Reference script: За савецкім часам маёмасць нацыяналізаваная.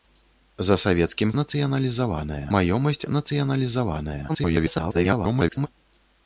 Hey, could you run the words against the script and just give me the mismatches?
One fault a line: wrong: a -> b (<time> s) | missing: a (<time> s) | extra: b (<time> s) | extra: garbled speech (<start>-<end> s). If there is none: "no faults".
wrong: часам -> нацыяналізаваная (1.4 s)
extra: garbled speech (4.3-5.7 s)